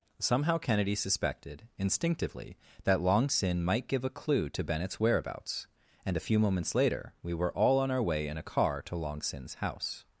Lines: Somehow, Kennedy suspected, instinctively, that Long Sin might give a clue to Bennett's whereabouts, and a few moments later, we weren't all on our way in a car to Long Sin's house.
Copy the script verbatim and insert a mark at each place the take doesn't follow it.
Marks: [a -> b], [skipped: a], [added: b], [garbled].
Somehow, Kennedy suspected, instinctively, that Long Sin might give a clue to Bennett's whereabouts, and a few moments later, we [weren't -> were] all on our way in a car to Long Sin's house.